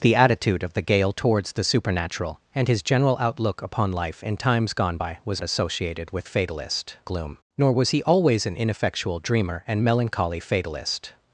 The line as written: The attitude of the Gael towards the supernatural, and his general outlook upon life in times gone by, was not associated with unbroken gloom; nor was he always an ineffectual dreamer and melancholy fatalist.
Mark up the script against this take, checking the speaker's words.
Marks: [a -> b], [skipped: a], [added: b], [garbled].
The attitude of the Gael towards the supernatural, and his general outlook upon life in times gone by, was [skipped: not] associated with [unbroken -> fatalist] gloom; nor was he always an ineffectual dreamer and melancholy fatalist.